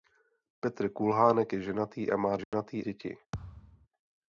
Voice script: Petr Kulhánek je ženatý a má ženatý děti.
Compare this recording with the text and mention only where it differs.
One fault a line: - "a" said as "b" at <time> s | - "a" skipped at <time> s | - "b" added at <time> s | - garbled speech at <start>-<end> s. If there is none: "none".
none